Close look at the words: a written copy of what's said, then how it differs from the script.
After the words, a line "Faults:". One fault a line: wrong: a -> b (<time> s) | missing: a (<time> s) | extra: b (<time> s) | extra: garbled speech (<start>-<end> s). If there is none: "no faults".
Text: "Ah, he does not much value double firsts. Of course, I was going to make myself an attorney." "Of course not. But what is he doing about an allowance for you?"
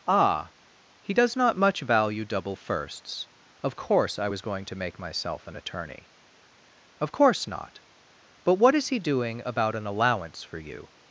"Ah, he does not much value double firsts. Of course, I was going to make myself an attorney." "Of course not. But what is he doing about an allowance for you?"
Faults:
no faults